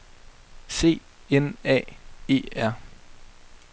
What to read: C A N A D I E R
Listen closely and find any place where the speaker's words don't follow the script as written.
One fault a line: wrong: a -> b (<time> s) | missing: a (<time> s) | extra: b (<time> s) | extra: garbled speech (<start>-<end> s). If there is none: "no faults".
missing: A (1.0 s)
missing: D I (2.0 s)